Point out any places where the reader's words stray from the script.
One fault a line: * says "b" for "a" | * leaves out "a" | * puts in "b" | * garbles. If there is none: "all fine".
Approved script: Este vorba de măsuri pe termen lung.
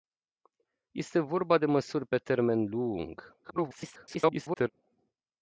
* garbles